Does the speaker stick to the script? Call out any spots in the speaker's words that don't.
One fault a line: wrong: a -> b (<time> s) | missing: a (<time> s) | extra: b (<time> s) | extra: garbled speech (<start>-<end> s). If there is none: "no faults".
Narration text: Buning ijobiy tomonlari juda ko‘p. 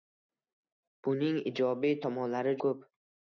missing: juda (2.6 s)